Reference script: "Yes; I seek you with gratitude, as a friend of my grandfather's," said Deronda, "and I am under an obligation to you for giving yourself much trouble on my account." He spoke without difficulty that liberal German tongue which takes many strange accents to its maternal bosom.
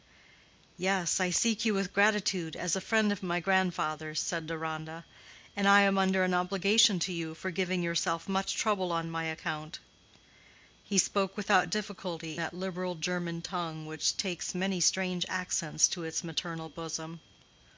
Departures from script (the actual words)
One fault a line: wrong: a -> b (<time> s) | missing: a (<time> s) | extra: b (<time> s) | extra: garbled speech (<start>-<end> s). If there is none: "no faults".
no faults